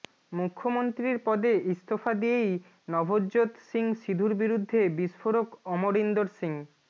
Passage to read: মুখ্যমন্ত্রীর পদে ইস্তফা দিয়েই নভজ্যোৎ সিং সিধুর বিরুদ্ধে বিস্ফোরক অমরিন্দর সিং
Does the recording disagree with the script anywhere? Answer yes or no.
no